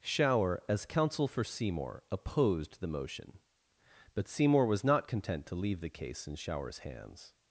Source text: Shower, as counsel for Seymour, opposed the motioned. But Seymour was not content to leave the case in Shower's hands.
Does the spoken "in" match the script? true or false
true